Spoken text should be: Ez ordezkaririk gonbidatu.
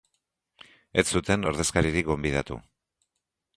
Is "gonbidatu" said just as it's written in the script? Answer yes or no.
yes